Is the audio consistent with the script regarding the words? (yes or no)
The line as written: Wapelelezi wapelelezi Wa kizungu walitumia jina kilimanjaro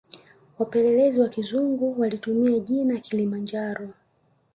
no